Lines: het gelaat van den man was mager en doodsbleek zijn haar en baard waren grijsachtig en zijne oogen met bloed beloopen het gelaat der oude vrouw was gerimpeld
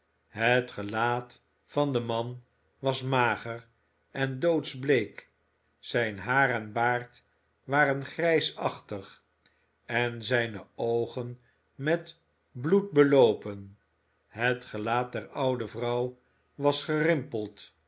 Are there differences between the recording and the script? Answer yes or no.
no